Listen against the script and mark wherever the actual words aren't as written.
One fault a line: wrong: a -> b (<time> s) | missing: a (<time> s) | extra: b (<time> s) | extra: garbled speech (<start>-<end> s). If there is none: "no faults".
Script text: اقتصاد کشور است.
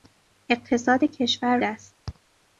no faults